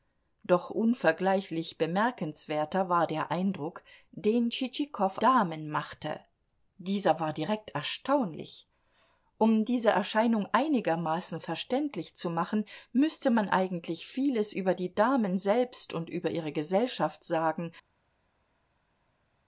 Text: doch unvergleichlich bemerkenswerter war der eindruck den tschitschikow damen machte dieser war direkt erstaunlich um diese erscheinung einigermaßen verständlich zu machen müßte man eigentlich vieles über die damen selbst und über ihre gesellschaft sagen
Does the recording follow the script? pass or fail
pass